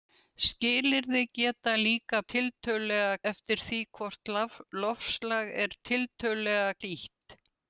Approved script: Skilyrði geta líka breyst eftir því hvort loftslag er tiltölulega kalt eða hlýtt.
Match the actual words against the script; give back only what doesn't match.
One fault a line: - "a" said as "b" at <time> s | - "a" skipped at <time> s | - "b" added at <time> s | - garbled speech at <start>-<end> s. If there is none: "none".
- "breyst" said as "tiltölulega" at 2.3 s
- "kalt eða" skipped at 6.7 s